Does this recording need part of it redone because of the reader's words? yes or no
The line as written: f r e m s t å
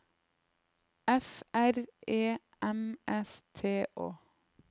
no